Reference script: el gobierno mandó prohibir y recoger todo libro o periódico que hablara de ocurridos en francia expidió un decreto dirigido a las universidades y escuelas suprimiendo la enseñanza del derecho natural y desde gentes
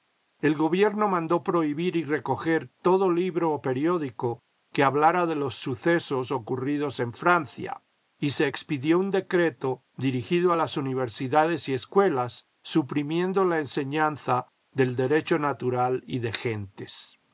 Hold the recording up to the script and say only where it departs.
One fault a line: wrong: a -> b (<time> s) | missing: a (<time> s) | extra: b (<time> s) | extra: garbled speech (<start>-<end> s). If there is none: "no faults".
extra: los sucesos (5.3 s)
extra: y se (8.2 s)
wrong: desde -> de (16.2 s)